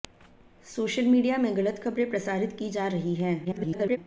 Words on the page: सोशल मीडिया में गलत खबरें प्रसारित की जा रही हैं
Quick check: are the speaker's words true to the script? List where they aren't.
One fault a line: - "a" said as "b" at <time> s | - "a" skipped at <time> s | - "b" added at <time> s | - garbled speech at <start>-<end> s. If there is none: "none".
- garbled speech at 3.4-4.0 s